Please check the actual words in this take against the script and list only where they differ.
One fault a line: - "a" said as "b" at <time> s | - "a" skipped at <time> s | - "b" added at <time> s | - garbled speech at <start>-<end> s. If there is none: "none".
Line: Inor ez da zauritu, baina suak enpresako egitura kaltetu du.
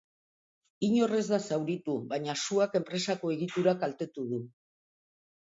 none